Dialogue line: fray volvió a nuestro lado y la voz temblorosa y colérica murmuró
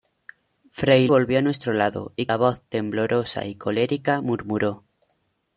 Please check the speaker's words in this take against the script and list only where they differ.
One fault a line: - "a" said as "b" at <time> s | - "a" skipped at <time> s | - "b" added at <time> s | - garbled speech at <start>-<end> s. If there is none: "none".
none